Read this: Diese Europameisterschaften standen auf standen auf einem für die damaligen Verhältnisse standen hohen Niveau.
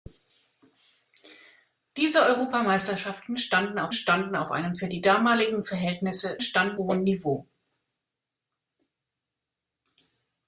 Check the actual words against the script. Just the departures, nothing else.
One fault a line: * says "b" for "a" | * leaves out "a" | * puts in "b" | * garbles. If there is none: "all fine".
all fine